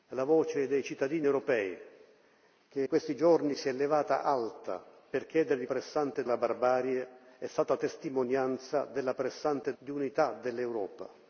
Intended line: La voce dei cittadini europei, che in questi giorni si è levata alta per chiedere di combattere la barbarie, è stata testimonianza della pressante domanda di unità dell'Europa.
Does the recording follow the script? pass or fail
fail